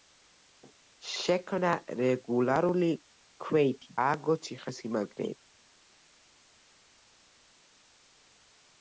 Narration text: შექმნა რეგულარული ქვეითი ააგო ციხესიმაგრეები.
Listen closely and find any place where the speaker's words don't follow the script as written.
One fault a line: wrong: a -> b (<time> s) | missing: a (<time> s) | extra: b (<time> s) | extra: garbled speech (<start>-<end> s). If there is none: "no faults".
no faults